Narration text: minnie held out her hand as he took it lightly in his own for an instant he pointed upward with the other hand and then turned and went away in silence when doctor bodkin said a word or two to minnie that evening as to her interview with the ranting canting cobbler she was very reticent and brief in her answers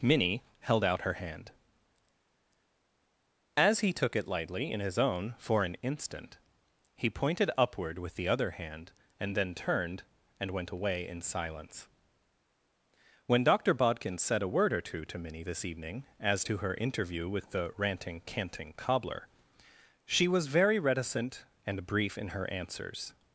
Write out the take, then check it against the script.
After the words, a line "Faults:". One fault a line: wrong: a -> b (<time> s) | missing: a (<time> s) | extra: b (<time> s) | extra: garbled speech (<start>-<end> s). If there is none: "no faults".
minnie held out her hand as he took it lightly in his own for an instant he pointed upward with the other hand and then turned and went away in silence when doctor bodkin said a word or two to minnie this evening as to her interview with the ranting canting cobbler she was very reticent and brief in her answers
Faults:
wrong: that -> this (15.4 s)